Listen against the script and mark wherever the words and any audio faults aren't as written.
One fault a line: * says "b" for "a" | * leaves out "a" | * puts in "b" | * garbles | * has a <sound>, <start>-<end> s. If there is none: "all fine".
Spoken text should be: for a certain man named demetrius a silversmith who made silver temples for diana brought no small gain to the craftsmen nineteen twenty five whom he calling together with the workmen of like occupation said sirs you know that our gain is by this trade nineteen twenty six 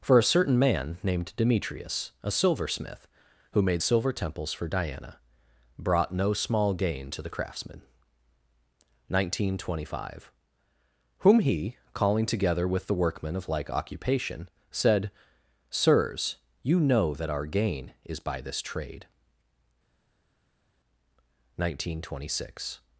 all fine